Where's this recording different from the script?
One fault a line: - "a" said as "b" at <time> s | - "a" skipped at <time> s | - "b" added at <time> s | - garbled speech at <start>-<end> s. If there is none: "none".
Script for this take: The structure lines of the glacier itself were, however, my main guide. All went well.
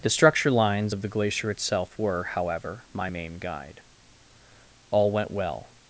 none